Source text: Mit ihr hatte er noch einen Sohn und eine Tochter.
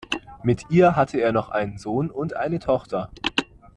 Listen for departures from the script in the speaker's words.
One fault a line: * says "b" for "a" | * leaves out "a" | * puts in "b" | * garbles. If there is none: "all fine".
all fine